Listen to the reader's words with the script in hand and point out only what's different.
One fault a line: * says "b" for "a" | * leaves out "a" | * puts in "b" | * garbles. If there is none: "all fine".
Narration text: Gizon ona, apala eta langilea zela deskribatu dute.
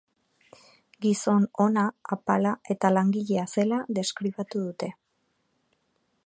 all fine